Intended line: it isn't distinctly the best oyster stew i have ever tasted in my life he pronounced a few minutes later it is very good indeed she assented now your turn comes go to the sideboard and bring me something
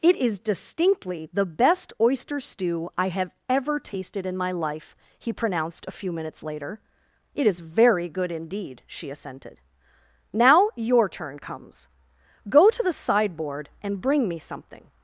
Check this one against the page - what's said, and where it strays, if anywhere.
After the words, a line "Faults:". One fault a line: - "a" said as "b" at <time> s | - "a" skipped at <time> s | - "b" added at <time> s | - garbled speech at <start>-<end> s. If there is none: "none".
it is distinctly the best oyster stew i have ever tasted in my life he pronounced a few minutes later it is very good indeed she assented now your turn comes go to the sideboard and bring me something
Faults:
- "isn't" said as "is" at 0.1 s